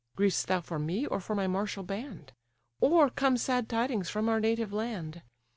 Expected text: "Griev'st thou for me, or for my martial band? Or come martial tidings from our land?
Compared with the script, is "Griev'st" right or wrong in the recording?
right